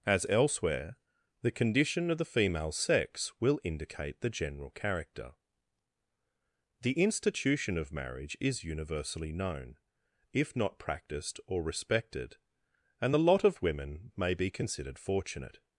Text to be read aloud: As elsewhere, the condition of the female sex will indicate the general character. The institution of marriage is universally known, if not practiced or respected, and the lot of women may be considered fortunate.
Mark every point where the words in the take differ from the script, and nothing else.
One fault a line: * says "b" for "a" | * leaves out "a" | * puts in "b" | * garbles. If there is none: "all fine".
all fine